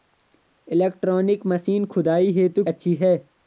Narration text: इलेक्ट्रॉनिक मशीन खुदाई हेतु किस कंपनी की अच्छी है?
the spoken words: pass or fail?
fail